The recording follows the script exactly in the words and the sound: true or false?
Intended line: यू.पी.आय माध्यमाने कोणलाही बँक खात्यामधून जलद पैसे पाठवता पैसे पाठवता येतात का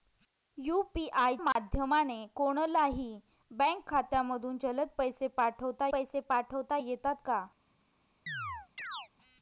false